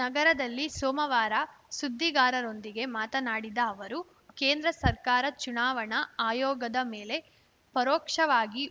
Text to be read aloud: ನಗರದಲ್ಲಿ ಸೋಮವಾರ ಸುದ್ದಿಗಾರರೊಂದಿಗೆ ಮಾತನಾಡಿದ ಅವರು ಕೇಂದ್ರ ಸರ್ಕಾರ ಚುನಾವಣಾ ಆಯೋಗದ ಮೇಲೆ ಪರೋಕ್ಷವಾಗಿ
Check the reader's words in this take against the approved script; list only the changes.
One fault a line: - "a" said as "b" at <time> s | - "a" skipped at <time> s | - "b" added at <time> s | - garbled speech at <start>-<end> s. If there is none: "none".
none